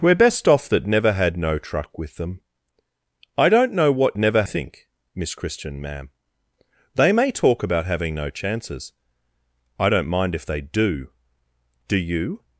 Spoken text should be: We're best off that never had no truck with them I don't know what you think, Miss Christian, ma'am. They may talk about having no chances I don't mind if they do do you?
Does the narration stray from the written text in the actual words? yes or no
yes